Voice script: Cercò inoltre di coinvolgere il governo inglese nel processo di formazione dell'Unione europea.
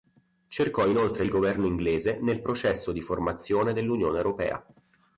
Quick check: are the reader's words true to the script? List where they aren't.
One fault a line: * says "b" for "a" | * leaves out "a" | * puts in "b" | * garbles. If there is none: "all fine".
* leaves out "di coinvolgere"